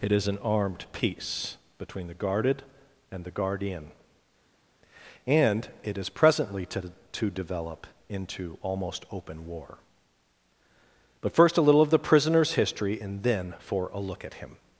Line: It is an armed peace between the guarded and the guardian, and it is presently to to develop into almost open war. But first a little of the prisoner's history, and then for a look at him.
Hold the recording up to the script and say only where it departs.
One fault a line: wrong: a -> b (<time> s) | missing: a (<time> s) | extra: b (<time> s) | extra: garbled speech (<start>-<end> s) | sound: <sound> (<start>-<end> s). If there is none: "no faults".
no faults